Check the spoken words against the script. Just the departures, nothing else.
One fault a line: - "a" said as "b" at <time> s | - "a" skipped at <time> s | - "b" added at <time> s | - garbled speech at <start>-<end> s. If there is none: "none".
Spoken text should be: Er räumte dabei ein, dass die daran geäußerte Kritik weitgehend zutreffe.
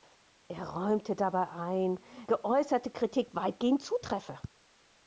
- "dass die daran" skipped at 2.0 s